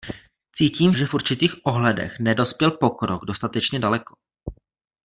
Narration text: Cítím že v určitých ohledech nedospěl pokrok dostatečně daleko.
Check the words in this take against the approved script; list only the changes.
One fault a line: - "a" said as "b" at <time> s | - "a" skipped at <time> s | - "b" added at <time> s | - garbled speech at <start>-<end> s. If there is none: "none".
none